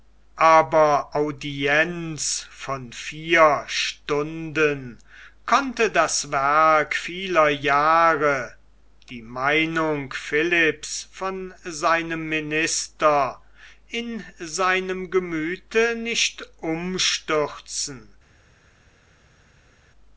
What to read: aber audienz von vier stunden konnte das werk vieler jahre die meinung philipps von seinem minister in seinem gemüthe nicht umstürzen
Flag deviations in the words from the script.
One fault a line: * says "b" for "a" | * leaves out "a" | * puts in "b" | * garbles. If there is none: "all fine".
all fine